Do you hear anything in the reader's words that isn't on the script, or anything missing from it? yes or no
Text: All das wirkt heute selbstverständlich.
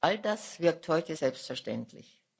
no